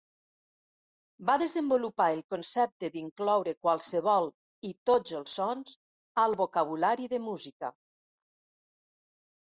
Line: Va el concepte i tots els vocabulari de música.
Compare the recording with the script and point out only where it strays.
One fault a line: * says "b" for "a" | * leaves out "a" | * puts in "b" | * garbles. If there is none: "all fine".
* puts in "desenvolupar"
* puts in "d'incloure qualsevol"
* puts in "sons al"